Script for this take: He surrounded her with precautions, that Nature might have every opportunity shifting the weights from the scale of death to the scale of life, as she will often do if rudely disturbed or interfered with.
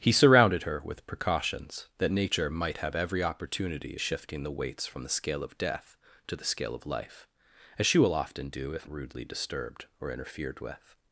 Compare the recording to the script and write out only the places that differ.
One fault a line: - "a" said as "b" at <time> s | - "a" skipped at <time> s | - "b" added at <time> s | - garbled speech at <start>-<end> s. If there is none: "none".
none